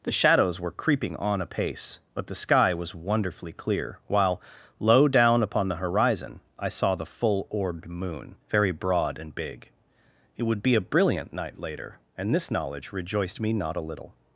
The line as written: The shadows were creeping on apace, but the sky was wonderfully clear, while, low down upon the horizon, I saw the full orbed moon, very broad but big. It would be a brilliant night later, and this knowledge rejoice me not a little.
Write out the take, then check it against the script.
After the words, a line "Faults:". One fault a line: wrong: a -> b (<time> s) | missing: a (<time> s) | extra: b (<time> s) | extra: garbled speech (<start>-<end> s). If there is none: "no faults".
The shadows were creeping on apace, but the sky was wonderfully clear, while, low down upon the horizon, I saw the full orbed moon, very broad and big. It would be a brilliant night later, and this knowledge rejoiced me not a little.
Faults:
wrong: but -> and (9.2 s)
wrong: rejoice -> rejoiced (12.9 s)